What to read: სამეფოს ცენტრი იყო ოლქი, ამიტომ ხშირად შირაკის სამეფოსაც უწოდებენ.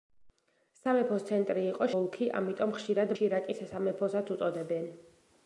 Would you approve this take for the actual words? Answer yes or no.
yes